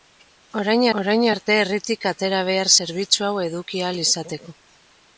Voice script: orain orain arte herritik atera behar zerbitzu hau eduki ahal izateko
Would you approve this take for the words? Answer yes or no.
yes